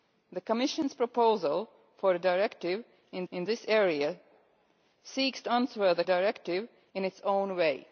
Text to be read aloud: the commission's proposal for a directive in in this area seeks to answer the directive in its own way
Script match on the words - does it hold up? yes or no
yes